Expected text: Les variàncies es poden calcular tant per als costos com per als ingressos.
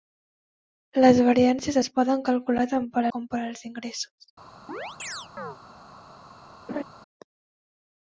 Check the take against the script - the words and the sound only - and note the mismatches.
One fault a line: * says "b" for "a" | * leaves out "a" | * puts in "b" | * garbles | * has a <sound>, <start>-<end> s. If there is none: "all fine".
* leaves out "als costos"
* has a chirp, 4.7-5.6 s
* has a laugh, 6.7-6.8 s